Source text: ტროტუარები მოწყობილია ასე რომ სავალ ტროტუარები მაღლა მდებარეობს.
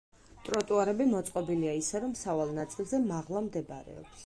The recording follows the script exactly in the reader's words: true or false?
false